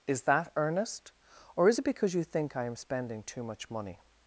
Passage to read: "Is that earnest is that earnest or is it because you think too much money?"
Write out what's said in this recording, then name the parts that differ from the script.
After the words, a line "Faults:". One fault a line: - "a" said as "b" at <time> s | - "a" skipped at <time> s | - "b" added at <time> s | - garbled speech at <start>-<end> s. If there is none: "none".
"Is that earnest or is it because you think I am spending too much money?"
Faults:
- "is that earnest" skipped at 1.1 s
- "I am spending" added at 2.5 s